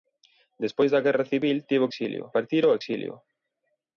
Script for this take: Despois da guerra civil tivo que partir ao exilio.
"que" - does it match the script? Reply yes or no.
no